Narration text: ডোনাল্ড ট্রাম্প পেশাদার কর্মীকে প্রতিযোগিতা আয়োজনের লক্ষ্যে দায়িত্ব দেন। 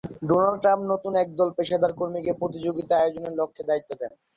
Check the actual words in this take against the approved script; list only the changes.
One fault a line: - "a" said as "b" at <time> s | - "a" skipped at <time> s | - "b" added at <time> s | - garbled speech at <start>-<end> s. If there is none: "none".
- "নতুন একদল" added at 0.9 s